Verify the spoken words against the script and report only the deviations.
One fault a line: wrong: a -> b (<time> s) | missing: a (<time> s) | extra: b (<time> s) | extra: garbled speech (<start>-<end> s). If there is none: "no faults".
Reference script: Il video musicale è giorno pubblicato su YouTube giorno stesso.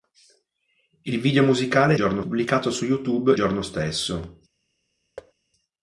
no faults